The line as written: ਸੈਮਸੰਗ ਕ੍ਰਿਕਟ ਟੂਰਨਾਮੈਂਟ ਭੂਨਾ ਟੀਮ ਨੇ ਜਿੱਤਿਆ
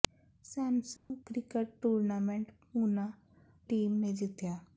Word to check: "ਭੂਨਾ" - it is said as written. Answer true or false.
true